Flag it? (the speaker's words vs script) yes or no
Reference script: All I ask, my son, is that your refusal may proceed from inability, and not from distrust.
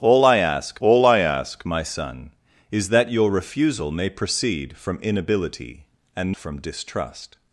yes